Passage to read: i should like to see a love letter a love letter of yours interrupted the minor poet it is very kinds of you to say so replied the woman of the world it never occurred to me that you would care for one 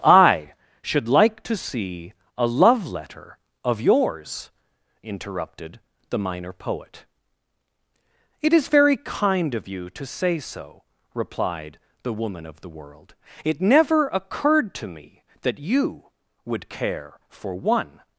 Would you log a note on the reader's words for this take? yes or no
yes